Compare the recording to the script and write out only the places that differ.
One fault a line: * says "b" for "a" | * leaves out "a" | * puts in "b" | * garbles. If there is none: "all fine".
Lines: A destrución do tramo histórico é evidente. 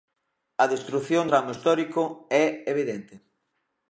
* leaves out "do"